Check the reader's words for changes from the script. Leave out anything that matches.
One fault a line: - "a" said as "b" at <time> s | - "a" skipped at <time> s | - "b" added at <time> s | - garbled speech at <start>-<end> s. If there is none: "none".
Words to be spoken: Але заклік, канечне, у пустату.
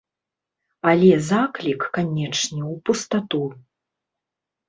none